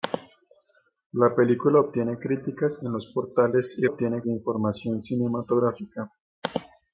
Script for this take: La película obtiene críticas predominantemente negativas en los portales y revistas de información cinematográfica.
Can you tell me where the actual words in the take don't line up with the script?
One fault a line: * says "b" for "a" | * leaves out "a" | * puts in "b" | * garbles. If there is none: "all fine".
* leaves out "predominantemente negativas"
* says "obtiene" for "revistas"